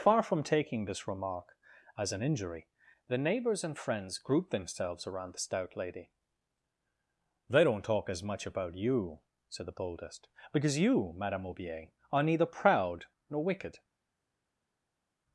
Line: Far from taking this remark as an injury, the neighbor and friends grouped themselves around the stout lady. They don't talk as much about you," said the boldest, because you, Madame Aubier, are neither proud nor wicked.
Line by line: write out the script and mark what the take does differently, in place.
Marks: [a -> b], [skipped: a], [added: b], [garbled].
Far from taking this remark as an injury, the [neighbor -> neighbors] and friends grouped themselves around the stout lady. They don't talk as much about you," said the boldest, because you, Madame Aubier, are neither proud nor wicked.